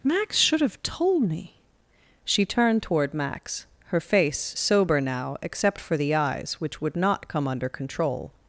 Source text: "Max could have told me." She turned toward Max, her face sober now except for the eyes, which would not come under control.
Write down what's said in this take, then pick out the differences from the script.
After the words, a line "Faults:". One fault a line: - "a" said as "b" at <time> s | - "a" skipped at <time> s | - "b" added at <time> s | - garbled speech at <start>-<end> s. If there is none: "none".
"Max should have told me." She turned toward Max, her face sober now except for the eyes, which would not come under control.
Faults:
- "could" said as "should" at 0.4 s